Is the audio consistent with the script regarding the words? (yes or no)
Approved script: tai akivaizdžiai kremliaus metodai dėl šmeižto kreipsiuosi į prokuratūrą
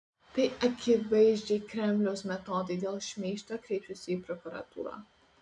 yes